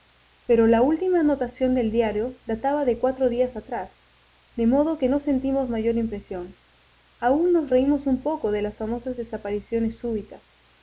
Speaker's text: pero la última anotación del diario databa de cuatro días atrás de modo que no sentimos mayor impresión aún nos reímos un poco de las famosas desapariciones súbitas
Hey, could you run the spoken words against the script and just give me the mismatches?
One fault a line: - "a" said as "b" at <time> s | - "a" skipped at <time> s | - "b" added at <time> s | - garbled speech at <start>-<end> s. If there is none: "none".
none